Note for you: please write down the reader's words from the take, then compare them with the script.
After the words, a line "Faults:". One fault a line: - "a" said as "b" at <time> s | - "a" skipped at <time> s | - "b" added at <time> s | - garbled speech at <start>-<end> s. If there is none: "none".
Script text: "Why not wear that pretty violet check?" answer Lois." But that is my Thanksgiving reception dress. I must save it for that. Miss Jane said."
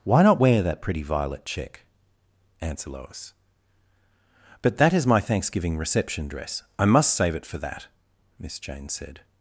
"Why not wear that pretty violet check?" answer Lois." But that is my Thanksgiving reception dress. I must save it for that. Miss Jane said."
Faults:
none